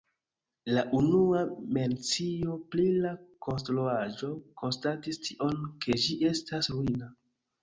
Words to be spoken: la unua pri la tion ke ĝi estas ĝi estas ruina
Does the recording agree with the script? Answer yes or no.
no